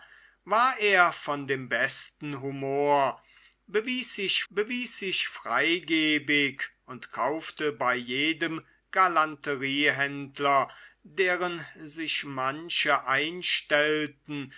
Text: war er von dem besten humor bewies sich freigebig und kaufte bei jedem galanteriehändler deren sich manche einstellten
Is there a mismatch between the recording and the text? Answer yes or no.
yes